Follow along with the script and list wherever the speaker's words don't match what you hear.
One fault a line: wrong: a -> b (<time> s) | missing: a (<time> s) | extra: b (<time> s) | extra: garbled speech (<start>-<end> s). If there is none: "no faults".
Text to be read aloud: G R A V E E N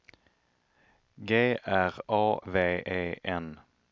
missing: E (3.2 s)